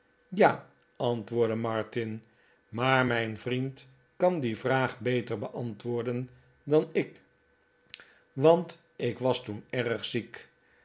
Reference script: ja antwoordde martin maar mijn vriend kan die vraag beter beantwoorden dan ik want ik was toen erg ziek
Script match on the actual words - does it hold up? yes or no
yes